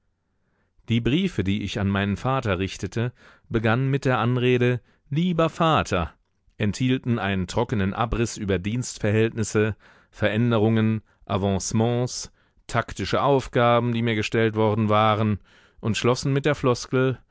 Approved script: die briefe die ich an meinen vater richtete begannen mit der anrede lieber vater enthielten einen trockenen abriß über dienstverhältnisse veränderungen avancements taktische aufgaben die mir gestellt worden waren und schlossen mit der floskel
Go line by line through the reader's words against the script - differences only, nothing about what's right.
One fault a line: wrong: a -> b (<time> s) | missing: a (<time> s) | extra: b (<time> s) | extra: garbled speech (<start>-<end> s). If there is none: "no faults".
no faults